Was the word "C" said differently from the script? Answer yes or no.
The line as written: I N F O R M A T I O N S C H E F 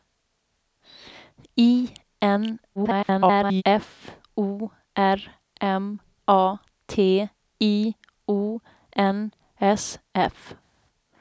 yes